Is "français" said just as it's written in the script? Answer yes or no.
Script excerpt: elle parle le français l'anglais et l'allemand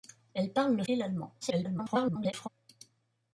no